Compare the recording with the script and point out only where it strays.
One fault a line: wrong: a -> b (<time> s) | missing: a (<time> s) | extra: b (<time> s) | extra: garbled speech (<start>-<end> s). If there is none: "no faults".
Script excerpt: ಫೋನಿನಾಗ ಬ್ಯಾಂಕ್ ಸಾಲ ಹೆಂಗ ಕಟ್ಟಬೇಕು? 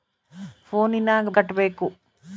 missing: ಬ್ಯಾಂಕ್ ಸಾಲ ಹೆಂಗ (1.3 s)